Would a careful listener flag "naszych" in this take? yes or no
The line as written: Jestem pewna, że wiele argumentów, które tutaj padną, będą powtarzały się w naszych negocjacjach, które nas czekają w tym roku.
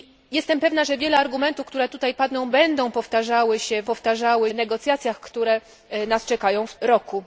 yes